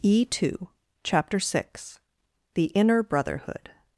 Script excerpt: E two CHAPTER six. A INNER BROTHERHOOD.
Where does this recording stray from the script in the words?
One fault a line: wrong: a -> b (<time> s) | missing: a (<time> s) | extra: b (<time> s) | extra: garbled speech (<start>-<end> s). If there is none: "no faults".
wrong: A -> THE (2.5 s)